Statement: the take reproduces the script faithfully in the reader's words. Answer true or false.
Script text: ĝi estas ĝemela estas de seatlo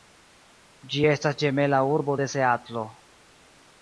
false